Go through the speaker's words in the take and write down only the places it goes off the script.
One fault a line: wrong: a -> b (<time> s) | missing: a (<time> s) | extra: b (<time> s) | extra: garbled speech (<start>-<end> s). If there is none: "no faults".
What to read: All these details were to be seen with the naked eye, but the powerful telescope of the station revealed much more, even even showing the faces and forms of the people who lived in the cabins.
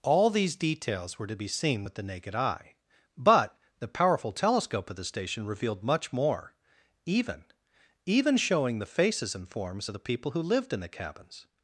no faults